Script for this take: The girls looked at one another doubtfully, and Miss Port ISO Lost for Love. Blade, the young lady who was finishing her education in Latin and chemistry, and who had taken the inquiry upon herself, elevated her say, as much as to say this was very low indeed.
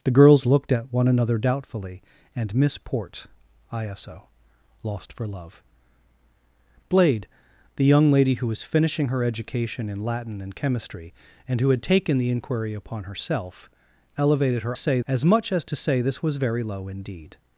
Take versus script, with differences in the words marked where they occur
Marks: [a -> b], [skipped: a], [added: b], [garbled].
The girls looked at one another doubtfully, and Miss Port ISO Lost for Love. Blade, the young lady who was finishing her education in Latin and chemistry, and who had taken the inquiry upon herself, elevated her say, as much as to say this was very low indeed.